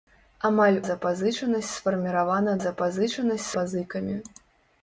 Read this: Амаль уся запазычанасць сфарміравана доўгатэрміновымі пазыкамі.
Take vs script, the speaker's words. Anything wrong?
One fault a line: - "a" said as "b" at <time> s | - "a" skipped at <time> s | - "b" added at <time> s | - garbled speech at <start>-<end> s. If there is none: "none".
- "уся" skipped at 0.8 s
- "доўгатэрміновымі" said as "запазычанасць" at 2.7 s